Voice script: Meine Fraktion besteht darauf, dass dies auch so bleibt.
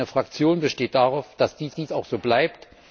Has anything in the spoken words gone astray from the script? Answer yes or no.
yes